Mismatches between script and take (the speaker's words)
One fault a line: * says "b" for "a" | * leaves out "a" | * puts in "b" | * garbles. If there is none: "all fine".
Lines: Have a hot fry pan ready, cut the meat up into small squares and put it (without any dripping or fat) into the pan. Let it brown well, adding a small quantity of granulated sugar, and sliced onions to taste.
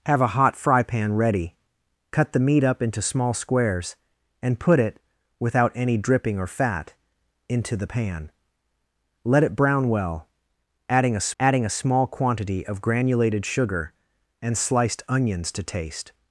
* puts in "adding a"